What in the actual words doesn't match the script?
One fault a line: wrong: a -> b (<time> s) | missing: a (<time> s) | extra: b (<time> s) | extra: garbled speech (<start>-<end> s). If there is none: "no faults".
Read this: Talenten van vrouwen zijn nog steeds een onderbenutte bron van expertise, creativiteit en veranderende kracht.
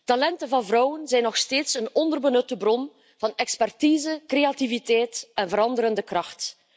no faults